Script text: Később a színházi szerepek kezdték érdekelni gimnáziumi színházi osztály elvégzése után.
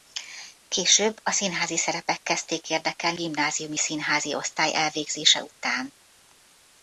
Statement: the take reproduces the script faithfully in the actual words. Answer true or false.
true